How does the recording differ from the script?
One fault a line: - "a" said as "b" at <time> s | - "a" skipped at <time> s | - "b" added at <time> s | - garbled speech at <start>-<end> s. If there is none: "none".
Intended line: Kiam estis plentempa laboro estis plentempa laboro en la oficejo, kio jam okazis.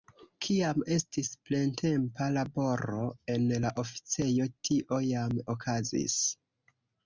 - "estis plentempa laboro" skipped at 3.0 s
- "kio" said as "tio" at 4.7 s